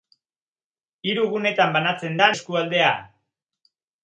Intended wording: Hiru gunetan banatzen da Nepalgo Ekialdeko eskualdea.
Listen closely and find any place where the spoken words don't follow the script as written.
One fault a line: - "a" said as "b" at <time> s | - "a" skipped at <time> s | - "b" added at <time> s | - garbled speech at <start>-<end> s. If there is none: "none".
- "Nepalgo Ekialdeko" skipped at 2.3 s